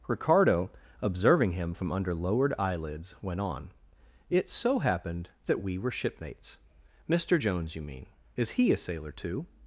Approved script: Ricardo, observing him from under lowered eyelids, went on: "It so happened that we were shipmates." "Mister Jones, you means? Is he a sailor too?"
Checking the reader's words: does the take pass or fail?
fail